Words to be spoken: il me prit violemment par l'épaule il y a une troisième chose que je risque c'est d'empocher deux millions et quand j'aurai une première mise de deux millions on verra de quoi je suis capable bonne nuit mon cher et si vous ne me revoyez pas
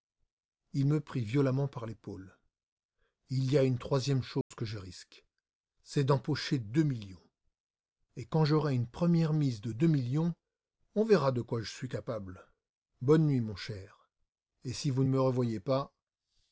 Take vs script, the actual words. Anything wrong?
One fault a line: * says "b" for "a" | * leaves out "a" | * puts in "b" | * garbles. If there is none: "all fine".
* leaves out "ne"